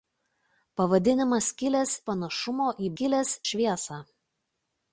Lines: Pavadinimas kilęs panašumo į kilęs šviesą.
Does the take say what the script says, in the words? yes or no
yes